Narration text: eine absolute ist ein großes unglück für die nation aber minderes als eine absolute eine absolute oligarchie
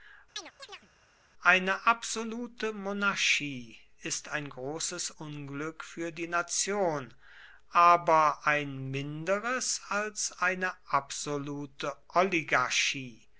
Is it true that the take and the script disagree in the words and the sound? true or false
true